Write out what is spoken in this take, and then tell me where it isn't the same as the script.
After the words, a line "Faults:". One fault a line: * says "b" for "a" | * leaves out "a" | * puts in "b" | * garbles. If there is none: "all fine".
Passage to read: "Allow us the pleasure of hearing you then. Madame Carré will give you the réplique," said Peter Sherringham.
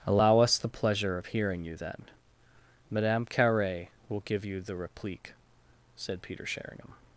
"Allow us the pleasure of hearing you then. Madame Carré will give you the réplique," said Peter Sherringham.
Faults:
all fine